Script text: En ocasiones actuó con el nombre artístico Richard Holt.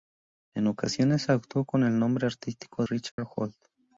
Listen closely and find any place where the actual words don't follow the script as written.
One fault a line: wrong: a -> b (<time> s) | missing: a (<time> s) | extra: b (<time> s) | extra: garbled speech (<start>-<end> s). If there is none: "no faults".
no faults